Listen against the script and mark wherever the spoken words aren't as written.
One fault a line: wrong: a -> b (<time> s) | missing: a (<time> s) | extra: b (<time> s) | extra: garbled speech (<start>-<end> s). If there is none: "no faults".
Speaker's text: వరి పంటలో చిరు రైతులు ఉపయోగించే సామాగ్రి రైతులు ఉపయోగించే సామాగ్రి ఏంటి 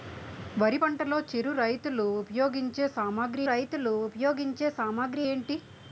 no faults